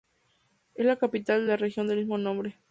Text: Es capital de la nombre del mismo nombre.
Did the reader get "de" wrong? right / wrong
right